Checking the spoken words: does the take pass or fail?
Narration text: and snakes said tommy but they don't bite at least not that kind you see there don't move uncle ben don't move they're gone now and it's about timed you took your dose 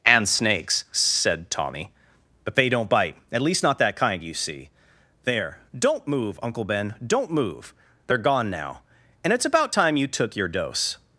fail